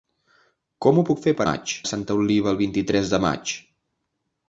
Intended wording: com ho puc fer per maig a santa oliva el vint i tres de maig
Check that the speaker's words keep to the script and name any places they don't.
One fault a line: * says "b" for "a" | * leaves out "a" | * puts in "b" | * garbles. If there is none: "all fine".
all fine